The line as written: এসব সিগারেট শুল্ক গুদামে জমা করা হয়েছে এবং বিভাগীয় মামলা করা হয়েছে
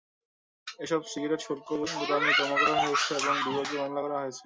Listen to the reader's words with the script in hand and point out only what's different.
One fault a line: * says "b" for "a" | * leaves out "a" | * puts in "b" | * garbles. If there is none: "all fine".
all fine